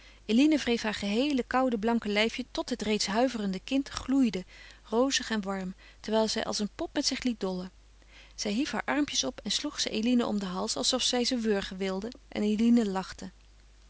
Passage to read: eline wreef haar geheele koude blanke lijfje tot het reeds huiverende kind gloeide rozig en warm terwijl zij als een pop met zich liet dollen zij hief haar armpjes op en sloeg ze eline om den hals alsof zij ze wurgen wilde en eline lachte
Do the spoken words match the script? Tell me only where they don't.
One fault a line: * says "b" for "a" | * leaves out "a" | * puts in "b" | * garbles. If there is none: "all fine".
all fine